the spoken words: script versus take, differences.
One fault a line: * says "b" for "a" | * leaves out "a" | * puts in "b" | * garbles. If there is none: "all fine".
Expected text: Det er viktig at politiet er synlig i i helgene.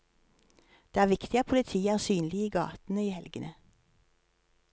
* puts in "gatene"